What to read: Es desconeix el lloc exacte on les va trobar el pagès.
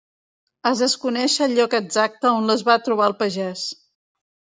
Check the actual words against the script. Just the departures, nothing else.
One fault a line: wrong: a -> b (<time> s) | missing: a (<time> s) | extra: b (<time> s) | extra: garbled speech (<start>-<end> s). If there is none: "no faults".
no faults